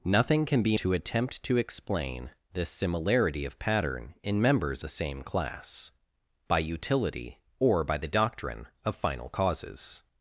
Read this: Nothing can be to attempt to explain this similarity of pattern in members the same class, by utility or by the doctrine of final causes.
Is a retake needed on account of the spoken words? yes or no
no